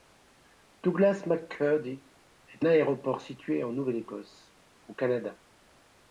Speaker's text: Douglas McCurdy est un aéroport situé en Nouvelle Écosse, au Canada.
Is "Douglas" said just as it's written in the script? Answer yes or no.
yes